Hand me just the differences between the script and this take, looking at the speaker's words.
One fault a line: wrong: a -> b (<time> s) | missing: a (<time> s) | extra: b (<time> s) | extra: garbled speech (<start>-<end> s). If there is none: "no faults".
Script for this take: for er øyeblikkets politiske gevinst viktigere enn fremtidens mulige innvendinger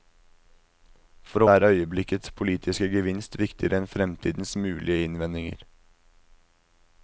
no faults